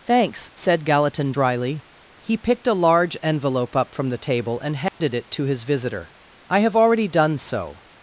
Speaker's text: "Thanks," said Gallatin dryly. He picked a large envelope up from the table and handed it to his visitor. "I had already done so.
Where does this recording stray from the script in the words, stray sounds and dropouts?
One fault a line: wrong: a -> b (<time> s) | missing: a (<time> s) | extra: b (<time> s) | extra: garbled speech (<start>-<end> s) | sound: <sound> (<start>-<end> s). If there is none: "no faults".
sound: dropout (4.9-5.0 s)
wrong: had -> have (6.6 s)